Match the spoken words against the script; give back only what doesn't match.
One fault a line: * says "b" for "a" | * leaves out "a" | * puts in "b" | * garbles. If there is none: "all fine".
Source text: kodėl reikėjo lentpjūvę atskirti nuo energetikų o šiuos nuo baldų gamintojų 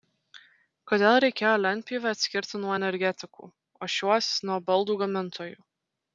all fine